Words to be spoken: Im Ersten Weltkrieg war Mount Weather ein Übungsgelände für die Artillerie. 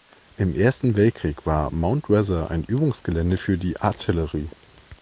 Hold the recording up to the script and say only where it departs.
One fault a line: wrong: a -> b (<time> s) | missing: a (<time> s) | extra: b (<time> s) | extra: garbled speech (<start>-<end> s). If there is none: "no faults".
no faults